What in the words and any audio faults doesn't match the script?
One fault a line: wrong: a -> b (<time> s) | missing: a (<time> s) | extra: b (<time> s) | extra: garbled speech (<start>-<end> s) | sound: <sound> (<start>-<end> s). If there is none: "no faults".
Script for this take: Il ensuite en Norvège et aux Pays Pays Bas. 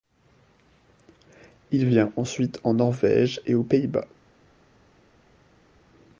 extra: vient (1.9 s)
missing: Pays (3.9 s)